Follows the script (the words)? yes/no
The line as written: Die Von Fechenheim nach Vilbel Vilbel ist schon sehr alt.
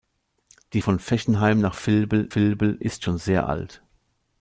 yes